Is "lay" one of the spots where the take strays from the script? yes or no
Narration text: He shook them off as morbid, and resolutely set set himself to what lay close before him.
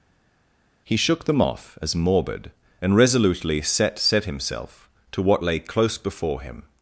no